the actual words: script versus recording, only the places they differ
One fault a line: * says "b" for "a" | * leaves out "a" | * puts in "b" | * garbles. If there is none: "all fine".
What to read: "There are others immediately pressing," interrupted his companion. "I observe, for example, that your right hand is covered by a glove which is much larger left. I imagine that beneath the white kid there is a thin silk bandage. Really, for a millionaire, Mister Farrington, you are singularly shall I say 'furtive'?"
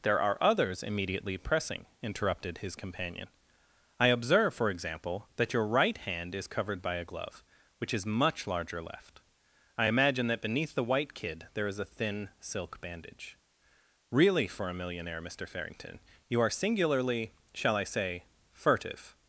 all fine